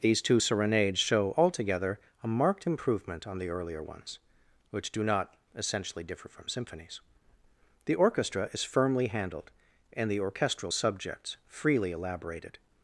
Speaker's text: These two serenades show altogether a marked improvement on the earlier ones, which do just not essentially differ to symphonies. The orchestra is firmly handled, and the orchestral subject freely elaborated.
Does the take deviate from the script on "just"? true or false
true